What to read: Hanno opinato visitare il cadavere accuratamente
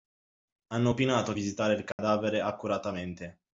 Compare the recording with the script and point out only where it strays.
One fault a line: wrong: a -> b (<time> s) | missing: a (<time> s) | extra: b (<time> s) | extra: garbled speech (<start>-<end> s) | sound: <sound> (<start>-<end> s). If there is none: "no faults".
sound: dropout (1.9-2.0 s)